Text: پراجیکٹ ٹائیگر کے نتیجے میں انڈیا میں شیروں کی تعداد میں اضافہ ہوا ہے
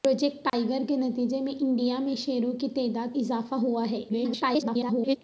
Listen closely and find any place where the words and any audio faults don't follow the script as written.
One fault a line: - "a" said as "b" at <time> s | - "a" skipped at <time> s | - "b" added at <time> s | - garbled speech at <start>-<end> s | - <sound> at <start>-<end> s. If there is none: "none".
- dropout at 0.5-0.5 s
- "میں" skipped at 3.2 s
- garbled speech at 4.1-5.2 s